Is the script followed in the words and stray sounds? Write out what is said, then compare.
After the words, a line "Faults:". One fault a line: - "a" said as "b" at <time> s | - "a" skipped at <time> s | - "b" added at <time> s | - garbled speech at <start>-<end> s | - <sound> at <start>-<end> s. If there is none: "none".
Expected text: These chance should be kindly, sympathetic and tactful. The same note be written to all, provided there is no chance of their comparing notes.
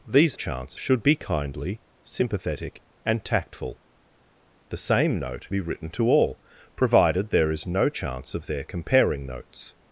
These chance should be kindly, sympathetic and tactful. The same note be written to all, provided there is no chance of their comparing notes.
Faults:
none